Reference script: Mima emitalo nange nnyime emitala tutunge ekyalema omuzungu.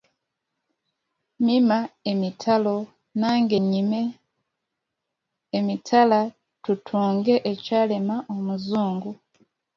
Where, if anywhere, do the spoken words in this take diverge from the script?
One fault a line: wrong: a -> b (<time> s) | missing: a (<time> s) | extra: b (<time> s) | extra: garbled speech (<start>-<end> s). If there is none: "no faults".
no faults